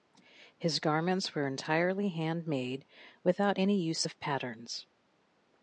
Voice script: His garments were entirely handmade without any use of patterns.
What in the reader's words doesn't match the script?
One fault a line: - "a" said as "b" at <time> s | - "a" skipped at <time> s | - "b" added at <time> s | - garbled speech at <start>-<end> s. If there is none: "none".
none